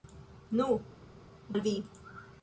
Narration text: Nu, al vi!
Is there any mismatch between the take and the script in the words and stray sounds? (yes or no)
no